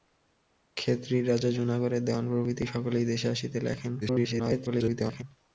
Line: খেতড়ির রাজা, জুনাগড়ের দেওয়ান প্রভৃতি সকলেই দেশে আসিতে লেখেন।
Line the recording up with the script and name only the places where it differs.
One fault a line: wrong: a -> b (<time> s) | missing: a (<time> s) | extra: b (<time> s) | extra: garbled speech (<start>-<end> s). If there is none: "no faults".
extra: garbled speech (4.0-5.2 s)